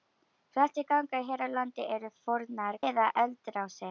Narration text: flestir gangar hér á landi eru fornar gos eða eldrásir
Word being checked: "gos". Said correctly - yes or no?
no